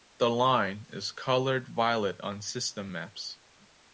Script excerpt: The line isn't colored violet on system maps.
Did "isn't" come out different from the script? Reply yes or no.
yes